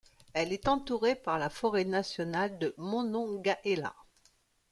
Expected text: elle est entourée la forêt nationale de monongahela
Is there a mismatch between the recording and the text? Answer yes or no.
yes